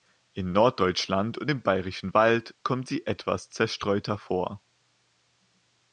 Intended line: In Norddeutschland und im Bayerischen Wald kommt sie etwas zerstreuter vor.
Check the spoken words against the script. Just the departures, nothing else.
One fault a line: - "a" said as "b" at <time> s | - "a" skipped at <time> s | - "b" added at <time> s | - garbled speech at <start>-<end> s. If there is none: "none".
none